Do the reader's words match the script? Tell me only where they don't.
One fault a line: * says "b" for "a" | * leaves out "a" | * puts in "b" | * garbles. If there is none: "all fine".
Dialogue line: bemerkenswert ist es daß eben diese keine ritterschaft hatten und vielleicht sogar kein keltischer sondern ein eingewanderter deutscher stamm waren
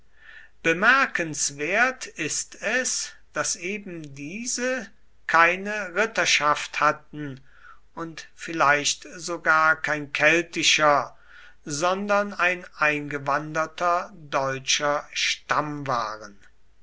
all fine